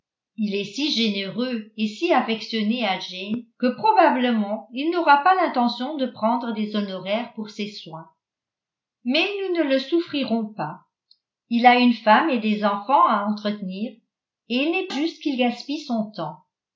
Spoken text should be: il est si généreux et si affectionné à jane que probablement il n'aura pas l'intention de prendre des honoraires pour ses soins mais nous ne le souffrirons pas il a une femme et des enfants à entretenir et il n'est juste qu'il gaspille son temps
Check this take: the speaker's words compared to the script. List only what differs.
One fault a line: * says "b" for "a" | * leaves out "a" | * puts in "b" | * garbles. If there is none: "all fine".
all fine